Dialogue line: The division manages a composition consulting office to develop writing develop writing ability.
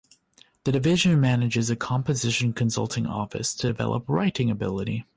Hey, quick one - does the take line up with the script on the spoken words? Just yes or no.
no